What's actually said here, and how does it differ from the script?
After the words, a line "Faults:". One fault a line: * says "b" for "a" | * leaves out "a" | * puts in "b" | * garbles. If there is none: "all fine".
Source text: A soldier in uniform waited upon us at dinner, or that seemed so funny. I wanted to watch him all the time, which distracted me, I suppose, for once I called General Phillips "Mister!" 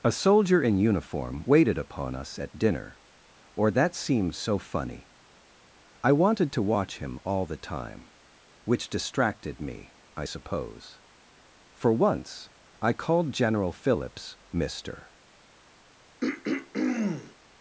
A soldier in uniform waited upon us at dinner, or that seemed so funny. I wanted to watch him all the time, which distracted me, I suppose, for once I called General Phillips "Mister!"
Faults:
all fine